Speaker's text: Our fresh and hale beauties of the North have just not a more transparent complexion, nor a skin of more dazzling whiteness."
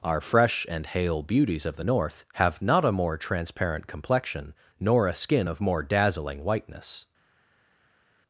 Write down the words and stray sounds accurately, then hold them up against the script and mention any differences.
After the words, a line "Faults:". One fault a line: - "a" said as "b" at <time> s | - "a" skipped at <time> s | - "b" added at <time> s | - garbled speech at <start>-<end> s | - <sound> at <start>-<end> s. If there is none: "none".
Our fresh and hale beauties of the North have not a more transparent complexion, nor a skin of more dazzling whiteness."
Faults:
- "just" skipped at 2.6 s